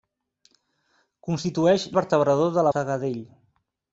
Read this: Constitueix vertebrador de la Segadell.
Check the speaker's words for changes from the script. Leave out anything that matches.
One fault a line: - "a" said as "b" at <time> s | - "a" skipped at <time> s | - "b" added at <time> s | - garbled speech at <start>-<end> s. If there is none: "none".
none